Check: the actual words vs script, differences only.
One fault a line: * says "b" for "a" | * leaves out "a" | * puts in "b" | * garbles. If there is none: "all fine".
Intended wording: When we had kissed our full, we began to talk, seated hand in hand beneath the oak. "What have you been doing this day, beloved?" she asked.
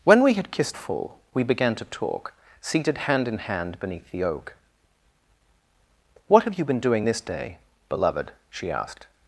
* leaves out "our"